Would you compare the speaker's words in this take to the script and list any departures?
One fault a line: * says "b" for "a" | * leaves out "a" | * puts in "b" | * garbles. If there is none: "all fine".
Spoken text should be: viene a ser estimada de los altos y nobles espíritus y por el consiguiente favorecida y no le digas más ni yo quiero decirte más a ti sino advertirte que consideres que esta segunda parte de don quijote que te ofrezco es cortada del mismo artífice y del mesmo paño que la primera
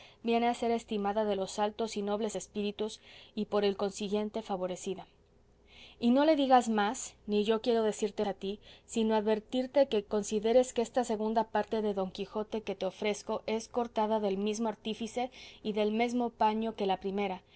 * leaves out "más"